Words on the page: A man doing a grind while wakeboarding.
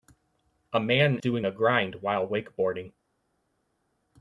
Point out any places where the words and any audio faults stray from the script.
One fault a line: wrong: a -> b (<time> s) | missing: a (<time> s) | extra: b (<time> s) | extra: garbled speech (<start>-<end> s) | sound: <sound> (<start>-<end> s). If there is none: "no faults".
no faults